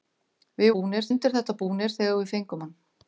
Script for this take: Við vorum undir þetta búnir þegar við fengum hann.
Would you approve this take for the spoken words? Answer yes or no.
no